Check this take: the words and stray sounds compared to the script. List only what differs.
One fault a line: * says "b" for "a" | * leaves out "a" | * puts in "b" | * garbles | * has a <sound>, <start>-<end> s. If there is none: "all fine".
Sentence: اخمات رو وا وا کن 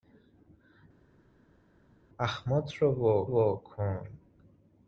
all fine